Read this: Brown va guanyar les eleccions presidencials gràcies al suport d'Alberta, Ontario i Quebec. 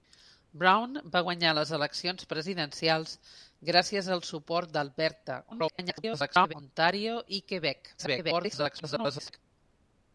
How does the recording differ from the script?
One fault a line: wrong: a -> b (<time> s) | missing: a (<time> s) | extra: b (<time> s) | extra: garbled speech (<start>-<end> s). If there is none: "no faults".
extra: garbled speech (5.5-6.5 s)
extra: garbled speech (8.0-9.4 s)